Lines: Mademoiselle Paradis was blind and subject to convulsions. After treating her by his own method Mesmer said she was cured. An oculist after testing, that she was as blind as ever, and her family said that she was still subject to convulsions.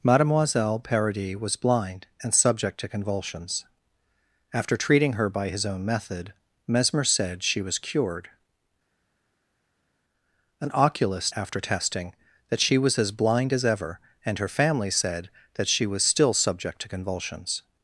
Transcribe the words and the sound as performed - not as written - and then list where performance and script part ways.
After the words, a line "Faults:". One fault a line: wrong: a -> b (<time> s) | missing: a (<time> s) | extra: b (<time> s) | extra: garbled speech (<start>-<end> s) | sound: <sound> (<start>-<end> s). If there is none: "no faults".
Mademoiselle Paradis was blind and subject to convulsions. After treating her by his own method Mesmer said she was cured. An oculist after testing, that she was as blind as ever, and her family said that she was still subject to convulsions.
Faults:
no faults